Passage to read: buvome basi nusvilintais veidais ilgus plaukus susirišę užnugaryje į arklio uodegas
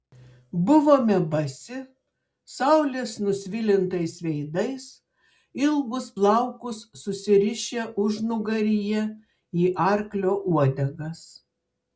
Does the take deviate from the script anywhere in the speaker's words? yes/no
yes